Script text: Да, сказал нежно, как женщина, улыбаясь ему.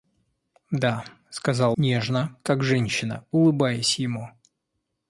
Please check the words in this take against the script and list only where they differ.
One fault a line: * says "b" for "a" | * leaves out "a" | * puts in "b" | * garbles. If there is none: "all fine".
all fine